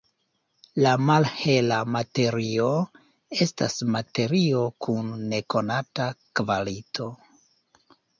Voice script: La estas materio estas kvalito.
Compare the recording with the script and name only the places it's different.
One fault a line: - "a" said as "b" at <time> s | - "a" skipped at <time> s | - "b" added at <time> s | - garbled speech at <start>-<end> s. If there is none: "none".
- "malhela materio" added at 1.1 s
- "estas" said as "kun nekonata" at 4.9 s